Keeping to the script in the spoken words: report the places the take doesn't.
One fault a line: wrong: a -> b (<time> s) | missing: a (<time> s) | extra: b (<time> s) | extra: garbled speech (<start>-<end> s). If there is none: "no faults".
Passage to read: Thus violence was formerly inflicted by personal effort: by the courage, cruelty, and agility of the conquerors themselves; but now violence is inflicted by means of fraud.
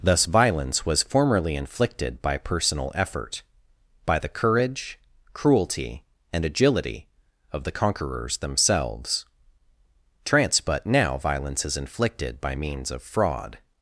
extra: trance (10.2 s)